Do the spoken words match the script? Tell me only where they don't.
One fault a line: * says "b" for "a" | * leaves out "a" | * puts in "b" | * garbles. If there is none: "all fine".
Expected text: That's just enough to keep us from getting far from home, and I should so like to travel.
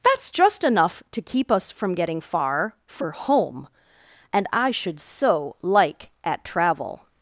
* says "for" for "from"
* says "at" for "to"